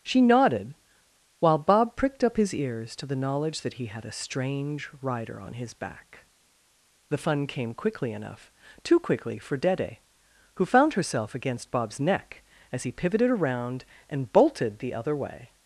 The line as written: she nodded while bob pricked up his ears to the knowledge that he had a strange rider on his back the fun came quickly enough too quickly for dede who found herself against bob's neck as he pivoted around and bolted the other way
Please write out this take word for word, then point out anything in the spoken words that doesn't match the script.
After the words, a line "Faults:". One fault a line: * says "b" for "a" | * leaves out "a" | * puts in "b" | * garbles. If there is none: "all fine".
she nodded while bob pricked up his ears to the knowledge that he had a strange rider on his back the fun came quickly enough too quickly for dede who found herself against bob's neck as he pivoted around and bolted the other way
Faults:
all fine